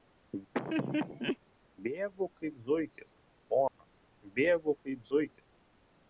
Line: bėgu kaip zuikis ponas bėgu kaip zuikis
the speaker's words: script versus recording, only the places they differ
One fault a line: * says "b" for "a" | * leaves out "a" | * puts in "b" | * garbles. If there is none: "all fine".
all fine